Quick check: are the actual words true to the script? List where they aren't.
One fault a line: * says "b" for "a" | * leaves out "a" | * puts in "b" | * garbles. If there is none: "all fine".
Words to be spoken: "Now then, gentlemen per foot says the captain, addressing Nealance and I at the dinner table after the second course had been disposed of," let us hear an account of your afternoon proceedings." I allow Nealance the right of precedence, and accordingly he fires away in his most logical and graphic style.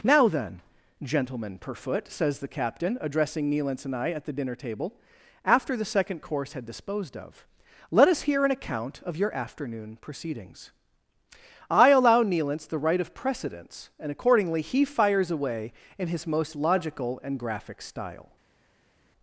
* leaves out "been"